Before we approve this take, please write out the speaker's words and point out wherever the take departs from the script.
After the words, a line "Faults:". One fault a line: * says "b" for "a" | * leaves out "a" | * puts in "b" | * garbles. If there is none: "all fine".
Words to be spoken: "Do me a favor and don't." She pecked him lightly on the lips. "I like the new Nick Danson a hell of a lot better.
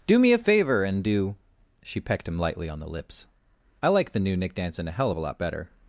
"Do me a favor and do." She pecked him lightly on the lips. "I like the new Nick Danson a hell of a lot better.
Faults:
* says "do" for "don't"